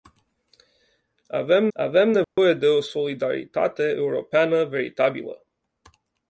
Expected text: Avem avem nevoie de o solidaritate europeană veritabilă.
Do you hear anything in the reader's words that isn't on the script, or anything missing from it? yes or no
no